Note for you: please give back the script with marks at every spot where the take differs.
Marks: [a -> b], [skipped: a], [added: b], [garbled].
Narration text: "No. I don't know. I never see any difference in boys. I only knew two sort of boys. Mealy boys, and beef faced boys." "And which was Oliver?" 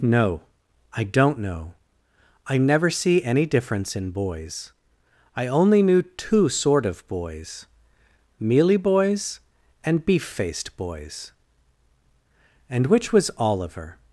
"No. I don't know. I never see any difference in boys. I only knew two sort of boys. Mealy boys, and beef faced boys." "And which was Oliver?"